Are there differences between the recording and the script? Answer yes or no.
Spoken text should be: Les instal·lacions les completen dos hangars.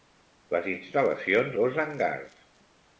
yes